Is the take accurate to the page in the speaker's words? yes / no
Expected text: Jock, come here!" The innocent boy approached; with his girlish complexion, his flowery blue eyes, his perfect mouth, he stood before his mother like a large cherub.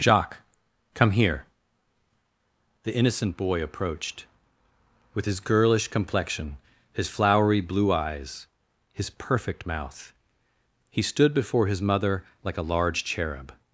no